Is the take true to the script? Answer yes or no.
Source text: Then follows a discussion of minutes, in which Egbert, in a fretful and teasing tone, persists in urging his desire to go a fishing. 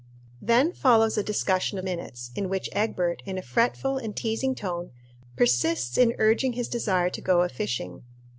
yes